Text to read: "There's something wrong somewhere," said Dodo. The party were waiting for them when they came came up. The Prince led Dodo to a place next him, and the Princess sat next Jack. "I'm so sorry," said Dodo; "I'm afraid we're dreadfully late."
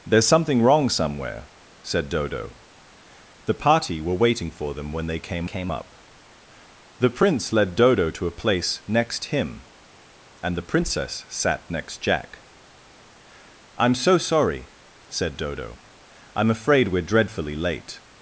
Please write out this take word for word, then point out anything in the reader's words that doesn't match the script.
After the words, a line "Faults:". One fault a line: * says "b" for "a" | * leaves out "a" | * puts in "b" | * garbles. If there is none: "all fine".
"There's something wrong somewhere," said Dodo. The party were waiting for them when they came came up. The Prince led Dodo to a place next him, and the Princess sat next Jack. "I'm so sorry," said Dodo; "I'm afraid we're dreadfully late."
Faults:
all fine